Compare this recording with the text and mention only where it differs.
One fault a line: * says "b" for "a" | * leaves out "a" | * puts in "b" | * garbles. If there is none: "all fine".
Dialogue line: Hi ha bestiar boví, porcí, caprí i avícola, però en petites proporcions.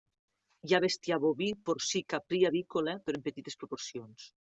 all fine